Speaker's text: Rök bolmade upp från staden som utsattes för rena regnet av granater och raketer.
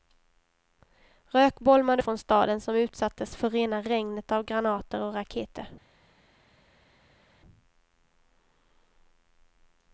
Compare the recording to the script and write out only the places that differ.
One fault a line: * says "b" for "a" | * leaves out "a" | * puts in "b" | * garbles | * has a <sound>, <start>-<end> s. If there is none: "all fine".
* leaves out "upp"